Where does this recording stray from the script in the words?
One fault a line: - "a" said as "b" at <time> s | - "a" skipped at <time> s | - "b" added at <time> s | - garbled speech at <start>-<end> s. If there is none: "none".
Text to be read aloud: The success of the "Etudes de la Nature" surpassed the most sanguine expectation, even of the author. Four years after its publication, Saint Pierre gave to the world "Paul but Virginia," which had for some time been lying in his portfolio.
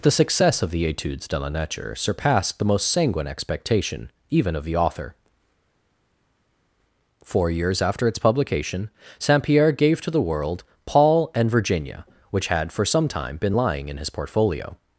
- "but" said as "and" at 11.3 s